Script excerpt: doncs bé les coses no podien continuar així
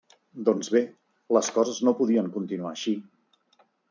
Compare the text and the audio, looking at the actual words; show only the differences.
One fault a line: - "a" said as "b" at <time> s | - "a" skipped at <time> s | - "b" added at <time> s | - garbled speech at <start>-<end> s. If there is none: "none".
none